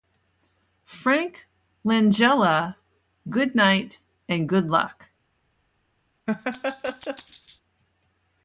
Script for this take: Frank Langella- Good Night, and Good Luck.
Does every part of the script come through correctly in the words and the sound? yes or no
no